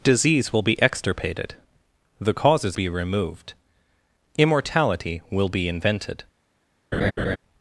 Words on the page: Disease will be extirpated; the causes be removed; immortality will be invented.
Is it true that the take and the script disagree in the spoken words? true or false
false